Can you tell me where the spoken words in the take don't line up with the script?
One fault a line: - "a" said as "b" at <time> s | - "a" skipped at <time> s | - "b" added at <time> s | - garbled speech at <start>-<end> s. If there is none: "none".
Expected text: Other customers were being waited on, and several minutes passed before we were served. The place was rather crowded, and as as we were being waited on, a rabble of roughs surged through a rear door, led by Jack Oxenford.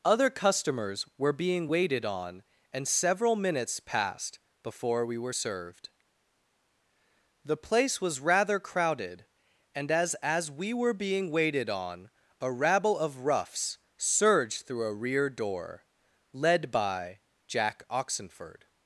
none